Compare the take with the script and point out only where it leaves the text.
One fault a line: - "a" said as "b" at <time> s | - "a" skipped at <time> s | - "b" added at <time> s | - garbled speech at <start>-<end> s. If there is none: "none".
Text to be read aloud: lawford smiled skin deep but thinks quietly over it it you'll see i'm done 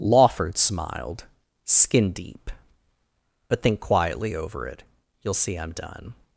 - "thinks" said as "think" at 3.6 s
- "it" skipped at 4.8 s